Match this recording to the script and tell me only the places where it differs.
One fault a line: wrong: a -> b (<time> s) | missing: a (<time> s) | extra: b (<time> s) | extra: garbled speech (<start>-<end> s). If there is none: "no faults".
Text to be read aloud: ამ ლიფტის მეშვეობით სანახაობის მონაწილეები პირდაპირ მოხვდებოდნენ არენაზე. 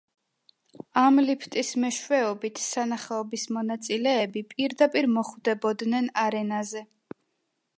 no faults